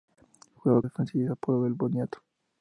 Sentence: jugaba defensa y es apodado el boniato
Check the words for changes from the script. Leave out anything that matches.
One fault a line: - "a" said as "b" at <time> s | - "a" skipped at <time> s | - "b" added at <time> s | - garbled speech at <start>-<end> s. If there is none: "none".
none